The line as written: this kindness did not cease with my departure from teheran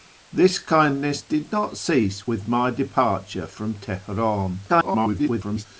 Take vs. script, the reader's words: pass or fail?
fail